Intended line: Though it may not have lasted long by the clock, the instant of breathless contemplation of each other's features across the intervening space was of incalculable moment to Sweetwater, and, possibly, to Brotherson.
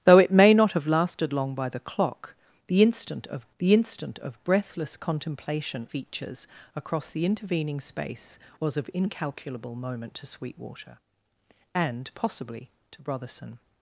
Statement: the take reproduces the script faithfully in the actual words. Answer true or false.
false